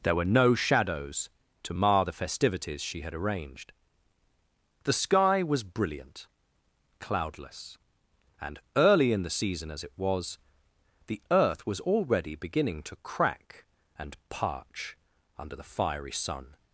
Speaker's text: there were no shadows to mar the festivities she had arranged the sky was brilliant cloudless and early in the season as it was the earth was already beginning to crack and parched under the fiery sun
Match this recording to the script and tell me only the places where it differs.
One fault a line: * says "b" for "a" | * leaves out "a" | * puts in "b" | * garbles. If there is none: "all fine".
* says "parch" for "parched"